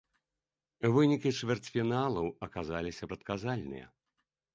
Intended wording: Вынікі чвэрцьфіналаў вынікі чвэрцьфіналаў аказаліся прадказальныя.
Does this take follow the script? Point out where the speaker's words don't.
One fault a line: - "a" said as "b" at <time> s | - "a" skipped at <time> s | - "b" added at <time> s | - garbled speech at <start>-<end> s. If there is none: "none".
- "вынікі чвэрцьфіналаў" skipped at 2.3 s